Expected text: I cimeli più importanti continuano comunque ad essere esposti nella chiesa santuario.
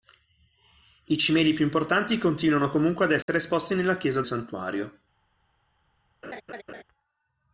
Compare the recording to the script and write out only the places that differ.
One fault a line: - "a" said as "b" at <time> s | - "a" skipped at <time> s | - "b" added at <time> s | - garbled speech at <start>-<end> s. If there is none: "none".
none